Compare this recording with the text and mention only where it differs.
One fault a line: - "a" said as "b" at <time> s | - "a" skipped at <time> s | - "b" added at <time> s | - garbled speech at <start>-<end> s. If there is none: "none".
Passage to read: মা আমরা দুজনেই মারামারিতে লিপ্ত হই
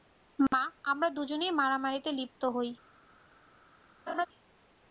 none